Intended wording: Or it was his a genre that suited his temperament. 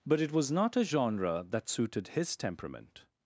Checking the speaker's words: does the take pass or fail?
fail